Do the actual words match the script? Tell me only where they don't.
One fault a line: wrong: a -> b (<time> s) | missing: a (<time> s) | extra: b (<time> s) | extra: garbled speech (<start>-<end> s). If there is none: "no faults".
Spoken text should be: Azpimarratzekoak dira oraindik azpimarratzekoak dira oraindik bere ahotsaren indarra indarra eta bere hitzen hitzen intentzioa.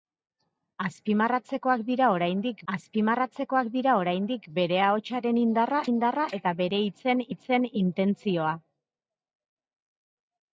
no faults